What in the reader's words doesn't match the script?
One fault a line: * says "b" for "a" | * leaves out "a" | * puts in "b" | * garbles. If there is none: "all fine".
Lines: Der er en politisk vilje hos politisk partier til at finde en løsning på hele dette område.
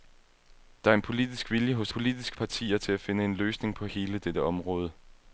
all fine